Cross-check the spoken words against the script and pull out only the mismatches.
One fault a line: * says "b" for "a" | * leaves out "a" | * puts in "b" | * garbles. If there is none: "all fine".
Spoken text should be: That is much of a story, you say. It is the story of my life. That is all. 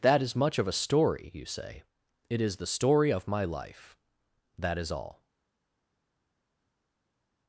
all fine